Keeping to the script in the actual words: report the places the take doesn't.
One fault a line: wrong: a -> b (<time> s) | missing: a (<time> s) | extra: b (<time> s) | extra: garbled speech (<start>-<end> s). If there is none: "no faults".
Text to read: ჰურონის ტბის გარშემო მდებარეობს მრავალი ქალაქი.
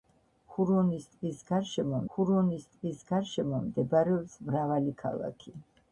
extra: ჰურონის ტბის გარშემო (2.1 s)